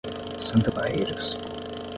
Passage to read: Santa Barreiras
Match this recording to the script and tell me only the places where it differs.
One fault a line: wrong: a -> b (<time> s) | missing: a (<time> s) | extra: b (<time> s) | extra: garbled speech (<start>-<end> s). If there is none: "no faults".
no faults